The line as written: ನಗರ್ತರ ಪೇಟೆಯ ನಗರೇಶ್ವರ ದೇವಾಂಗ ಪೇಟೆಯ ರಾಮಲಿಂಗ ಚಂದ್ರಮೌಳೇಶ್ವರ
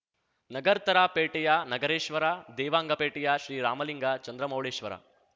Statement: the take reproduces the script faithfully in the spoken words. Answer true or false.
false